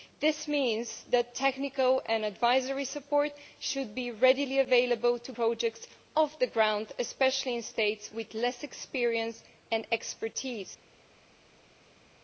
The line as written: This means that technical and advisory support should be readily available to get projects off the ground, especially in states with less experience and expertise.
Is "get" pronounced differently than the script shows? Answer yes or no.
yes